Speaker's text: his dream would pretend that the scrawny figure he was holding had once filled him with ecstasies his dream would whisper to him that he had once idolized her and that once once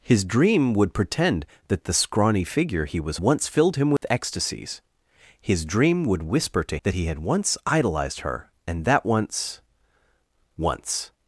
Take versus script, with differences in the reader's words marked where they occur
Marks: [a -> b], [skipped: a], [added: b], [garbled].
his dream would pretend that the scrawny figure he was [skipped: holding had] once filled him with ecstasies his dream would whisper to [skipped: him] that he had once idolized her and that once once